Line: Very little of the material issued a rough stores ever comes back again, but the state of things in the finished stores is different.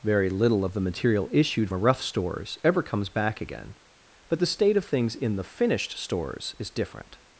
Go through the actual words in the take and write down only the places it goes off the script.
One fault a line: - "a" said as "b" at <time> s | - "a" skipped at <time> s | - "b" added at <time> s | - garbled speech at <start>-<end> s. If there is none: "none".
none